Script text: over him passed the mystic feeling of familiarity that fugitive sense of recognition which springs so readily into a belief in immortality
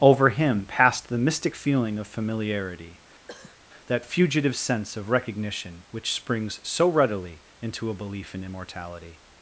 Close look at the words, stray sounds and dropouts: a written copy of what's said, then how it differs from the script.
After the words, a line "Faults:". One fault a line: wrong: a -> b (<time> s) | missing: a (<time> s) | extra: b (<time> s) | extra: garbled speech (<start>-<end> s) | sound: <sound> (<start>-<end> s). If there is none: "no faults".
over him passed the mystic feeling of familiarity that fugitive sense of recognition which springs so readily into a belief in immortality
Faults:
sound: cough (3.3-3.6 s)